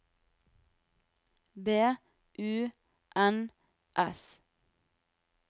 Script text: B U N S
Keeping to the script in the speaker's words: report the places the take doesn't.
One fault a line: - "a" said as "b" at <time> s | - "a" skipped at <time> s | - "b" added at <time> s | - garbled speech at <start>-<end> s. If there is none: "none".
none